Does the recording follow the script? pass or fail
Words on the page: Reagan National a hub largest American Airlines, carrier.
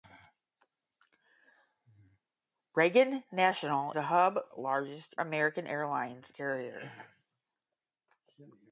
pass